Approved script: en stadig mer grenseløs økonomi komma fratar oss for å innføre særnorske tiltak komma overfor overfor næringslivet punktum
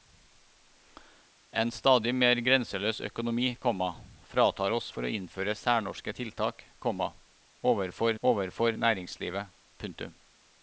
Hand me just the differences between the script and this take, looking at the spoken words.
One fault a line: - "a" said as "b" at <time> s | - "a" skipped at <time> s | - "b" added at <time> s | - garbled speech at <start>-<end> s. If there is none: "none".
none